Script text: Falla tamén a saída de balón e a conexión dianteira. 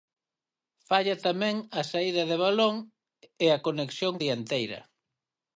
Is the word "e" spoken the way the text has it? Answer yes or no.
yes